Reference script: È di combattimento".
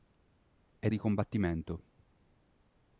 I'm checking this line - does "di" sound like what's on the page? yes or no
yes